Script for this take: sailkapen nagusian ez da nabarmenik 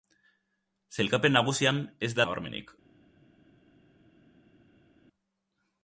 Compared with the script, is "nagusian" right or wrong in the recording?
right